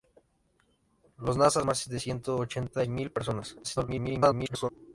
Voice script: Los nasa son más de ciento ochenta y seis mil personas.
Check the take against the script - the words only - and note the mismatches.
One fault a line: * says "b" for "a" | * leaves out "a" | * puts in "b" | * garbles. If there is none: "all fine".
* leaves out "son"
* leaves out "y seis"
* garbles